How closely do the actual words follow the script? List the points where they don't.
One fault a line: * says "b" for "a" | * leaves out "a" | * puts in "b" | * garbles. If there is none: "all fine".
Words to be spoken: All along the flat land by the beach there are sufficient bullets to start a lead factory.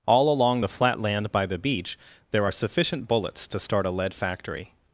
all fine